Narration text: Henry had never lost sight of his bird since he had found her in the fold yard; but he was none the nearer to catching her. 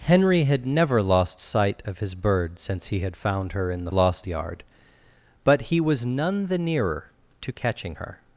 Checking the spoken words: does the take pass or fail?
fail